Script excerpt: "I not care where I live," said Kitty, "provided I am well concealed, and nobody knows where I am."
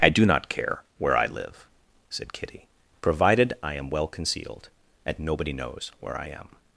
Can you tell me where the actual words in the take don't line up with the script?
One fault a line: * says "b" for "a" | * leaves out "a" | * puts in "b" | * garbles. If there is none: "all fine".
* puts in "do"